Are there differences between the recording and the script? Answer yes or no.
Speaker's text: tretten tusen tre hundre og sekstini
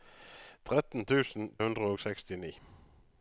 yes